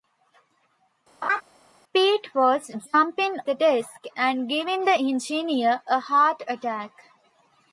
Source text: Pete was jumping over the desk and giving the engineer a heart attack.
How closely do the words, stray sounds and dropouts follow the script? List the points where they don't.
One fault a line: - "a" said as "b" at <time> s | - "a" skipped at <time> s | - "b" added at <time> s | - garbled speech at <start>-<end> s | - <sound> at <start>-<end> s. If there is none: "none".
- laugh at 1.2-1.4 s
- "over" skipped at 3.4 s